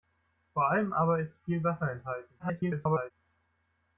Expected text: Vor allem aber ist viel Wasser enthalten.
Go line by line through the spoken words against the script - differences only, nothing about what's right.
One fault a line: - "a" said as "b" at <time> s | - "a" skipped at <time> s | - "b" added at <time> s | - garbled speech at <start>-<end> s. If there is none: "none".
- garbled speech at 2.4-3.1 s